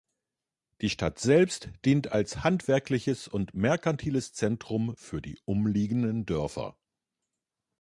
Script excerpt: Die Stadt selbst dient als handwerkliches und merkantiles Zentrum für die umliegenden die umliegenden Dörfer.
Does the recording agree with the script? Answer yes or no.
no